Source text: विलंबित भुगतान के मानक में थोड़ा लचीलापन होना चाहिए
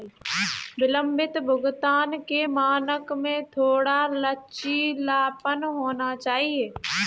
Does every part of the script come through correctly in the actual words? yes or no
yes